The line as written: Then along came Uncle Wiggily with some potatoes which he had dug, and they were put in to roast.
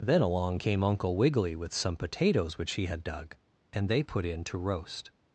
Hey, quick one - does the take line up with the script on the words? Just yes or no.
no